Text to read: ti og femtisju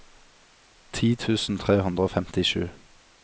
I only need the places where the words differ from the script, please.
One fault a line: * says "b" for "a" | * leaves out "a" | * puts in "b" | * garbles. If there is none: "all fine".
* puts in "tusen tre hundre"